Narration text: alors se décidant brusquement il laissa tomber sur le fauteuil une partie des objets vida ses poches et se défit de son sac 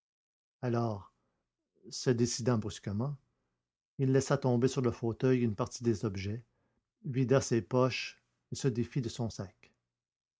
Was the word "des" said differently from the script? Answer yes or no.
no